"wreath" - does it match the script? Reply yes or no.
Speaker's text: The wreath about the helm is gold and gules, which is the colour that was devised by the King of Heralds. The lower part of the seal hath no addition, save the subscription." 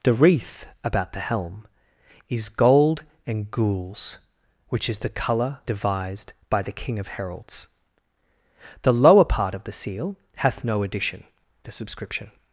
yes